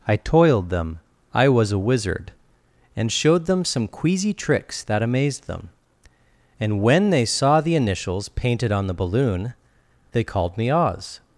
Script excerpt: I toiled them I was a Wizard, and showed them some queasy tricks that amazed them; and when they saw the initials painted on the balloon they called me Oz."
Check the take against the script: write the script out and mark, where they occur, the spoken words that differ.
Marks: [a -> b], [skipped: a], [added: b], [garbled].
I toiled them I was a Wizard, and showed them some queasy tricks that amazed them; and when they saw the initials painted on the balloon they called me Oz."